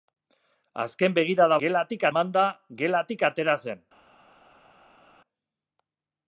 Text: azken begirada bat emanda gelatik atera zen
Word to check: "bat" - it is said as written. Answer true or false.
false